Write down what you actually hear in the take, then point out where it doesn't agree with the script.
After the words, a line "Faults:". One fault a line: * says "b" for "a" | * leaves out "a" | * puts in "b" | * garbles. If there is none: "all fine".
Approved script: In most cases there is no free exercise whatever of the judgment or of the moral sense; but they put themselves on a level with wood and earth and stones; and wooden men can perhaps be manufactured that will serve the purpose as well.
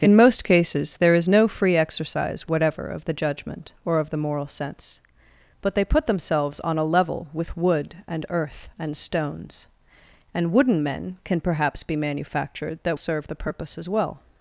In most cases there is no free exercise whatever of the judgment or of the moral sense; but they put themselves on a level with wood and earth and stones; and wooden men can perhaps be manufactured that serve the purpose as well.
Faults:
* leaves out "will"